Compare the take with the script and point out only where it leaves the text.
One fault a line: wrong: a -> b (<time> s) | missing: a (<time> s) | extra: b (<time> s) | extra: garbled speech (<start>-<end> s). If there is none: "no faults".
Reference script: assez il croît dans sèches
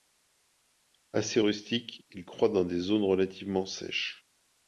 extra: rustique (1.4 s)
extra: des zones relativement (2.6 s)